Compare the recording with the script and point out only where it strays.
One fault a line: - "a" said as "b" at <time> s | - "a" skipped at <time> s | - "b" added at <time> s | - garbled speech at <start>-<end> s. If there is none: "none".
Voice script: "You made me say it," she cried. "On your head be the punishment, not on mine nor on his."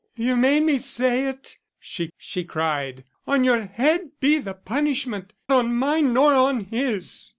- "she" added at 2.2 s
- "not" skipped at 5.3 s